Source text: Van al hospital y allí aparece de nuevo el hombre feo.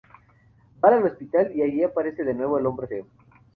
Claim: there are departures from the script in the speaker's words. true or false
false